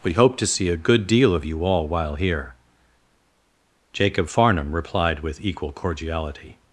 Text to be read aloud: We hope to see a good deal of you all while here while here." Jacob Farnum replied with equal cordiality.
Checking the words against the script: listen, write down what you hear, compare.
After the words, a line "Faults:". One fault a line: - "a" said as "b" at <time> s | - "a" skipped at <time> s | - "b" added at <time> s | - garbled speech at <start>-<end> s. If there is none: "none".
We hope to see a good deal of you all while here." Jacob Farnum replied with equal cordiality.
Faults:
- "while here" skipped at 2.5 s